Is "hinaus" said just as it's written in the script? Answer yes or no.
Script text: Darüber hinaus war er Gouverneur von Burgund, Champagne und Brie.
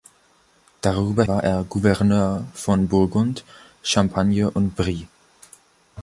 no